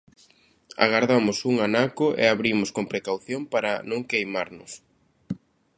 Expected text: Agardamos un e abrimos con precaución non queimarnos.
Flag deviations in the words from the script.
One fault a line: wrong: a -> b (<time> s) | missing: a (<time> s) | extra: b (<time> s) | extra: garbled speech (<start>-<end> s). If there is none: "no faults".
extra: anaco (1.7 s)
extra: para (3.5 s)